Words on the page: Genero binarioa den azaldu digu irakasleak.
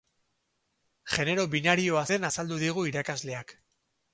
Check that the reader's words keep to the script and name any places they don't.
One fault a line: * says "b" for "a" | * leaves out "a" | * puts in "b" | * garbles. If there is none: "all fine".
all fine